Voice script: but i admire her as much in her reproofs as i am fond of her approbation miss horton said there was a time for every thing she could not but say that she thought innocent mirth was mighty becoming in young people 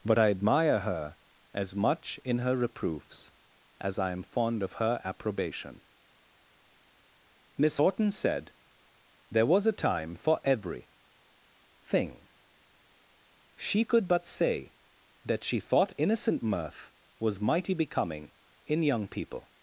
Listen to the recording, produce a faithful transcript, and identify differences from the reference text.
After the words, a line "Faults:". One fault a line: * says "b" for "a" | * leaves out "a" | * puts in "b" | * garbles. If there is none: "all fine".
but i admire her as much in her reproofs as i am fond of her approbation miss horton said there was a time for every thing she could but say that she thought innocent mirth was mighty becoming in young people
Faults:
* leaves out "not"